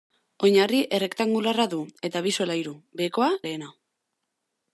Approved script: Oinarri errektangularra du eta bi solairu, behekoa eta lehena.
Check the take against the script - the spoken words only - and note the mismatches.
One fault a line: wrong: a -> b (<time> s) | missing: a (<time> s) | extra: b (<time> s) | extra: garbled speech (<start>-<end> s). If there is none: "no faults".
missing: eta (3.3 s)